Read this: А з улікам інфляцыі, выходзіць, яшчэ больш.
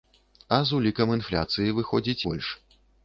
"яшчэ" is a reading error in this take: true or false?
true